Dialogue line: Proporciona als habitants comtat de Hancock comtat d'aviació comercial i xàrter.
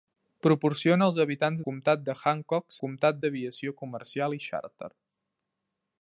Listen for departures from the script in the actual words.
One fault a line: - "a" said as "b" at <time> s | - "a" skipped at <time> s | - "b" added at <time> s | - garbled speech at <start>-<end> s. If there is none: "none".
none